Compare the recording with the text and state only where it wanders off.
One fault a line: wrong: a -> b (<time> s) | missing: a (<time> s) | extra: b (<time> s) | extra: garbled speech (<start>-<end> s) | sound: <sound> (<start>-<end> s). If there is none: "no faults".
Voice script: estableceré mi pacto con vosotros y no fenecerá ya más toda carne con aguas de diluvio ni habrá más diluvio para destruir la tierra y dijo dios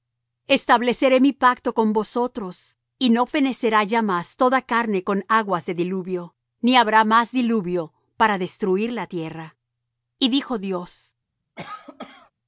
sound: cough (11.6-12.3 s)